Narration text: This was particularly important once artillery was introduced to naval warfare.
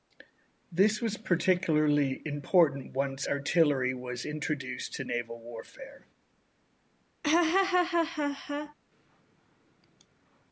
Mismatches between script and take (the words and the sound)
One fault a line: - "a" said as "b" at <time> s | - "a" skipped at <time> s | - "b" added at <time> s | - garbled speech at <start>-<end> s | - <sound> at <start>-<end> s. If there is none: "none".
- laugh at 7.2-8.7 s